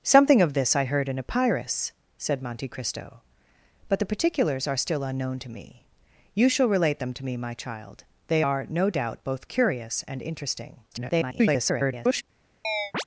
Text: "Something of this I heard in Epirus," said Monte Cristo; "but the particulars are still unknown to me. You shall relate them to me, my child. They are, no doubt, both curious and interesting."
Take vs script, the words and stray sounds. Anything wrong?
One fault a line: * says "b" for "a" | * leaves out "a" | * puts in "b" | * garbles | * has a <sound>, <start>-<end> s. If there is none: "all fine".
* garbles
* has a chirp, 12.6-13.0 s